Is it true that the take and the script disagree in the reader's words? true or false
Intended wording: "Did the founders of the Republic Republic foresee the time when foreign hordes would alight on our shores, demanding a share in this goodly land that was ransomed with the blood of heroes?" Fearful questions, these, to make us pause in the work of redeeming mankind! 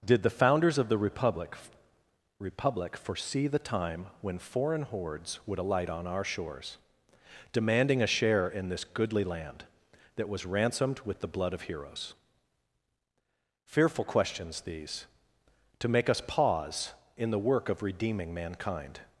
false